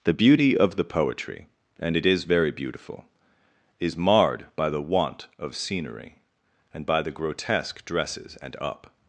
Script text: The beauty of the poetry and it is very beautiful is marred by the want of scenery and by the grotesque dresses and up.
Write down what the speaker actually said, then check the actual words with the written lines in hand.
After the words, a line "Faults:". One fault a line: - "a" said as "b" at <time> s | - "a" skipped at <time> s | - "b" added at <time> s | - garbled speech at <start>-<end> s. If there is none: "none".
The beauty of the poetry and it is very beautiful is marred by the want of scenery and by the grotesque dresses and up.
Faults:
none